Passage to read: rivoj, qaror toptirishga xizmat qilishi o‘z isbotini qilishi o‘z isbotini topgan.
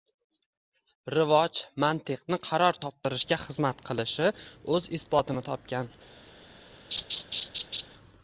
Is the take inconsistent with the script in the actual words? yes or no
yes